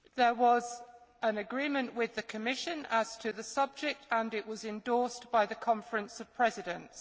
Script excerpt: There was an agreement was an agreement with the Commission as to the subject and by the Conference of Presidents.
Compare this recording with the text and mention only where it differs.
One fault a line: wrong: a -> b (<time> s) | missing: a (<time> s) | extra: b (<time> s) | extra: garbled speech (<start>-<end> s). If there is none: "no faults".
missing: was an agreement (1.9 s)
extra: it was endorsed (4.3 s)